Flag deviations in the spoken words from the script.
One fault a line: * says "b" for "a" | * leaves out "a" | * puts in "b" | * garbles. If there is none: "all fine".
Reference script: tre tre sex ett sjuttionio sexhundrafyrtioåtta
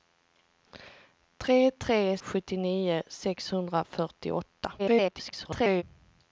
* leaves out "sex ett"
* garbles